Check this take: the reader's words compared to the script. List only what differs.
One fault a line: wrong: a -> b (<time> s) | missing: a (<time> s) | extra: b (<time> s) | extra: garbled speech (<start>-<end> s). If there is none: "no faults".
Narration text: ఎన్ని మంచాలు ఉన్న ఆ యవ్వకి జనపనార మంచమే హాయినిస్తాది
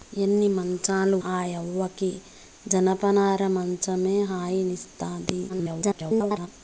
missing: ఉన్న (1.2 s)
extra: garbled speech (5.5-6.5 s)